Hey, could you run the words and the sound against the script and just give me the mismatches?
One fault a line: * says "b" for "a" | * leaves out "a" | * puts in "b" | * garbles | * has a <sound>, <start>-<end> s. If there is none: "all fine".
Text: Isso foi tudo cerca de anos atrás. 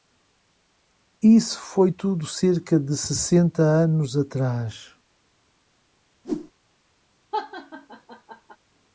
* puts in "sessenta"
* has a whoosh, 6.2-6.5 s
* has a laugh, 7.3-8.6 s